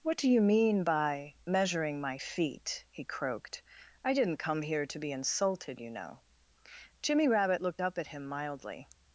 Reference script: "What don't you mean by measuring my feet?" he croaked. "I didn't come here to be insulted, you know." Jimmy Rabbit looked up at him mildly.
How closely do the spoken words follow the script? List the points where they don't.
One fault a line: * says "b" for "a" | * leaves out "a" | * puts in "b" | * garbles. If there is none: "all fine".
* says "do" for "don't"